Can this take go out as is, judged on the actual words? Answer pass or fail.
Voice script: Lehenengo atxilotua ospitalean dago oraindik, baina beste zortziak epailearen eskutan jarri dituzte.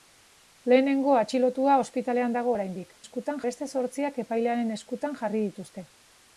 fail